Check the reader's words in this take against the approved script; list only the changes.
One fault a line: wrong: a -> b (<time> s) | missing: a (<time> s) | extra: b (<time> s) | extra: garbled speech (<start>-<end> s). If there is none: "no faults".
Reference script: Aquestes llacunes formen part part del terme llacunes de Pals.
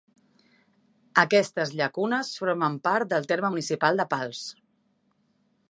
missing: part (3.1 s)
wrong: llacunes -> municipal (3.5 s)